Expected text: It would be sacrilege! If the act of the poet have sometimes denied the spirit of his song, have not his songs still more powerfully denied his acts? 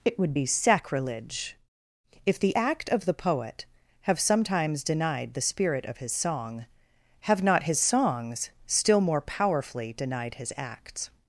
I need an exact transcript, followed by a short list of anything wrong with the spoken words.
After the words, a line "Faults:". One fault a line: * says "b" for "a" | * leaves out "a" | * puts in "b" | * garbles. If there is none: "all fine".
It would be sacrilege! If the act of the poet have sometimes denied the spirit of his song, have not his songs still more powerfully denied his acts?
Faults:
all fine